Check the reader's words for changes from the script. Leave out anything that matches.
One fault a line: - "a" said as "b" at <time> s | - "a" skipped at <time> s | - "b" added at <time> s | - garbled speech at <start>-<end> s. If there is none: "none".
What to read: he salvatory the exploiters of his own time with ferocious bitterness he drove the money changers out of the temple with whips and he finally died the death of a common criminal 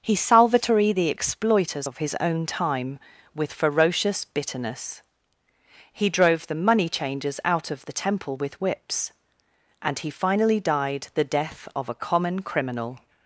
none